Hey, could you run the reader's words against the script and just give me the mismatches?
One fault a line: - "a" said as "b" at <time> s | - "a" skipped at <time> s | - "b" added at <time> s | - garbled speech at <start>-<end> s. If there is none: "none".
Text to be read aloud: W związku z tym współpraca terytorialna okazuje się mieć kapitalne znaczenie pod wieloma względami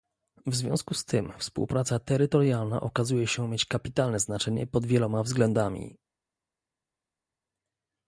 none